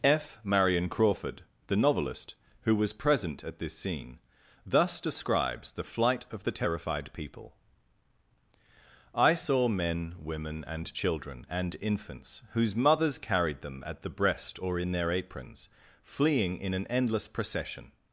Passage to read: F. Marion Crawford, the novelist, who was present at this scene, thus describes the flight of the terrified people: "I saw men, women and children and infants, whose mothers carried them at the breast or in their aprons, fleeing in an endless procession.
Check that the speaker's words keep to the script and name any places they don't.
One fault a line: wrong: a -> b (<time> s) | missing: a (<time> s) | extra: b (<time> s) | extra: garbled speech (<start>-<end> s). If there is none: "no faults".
no faults